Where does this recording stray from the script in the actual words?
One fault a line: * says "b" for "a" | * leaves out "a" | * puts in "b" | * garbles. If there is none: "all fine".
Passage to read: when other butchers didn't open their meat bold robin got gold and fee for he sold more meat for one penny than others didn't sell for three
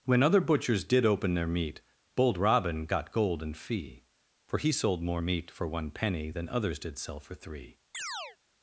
* says "did" for "didn't"
* says "did" for "didn't"